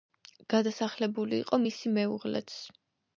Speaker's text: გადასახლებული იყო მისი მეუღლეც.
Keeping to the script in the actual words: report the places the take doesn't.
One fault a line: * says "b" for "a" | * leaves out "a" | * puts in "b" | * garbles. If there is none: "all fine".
all fine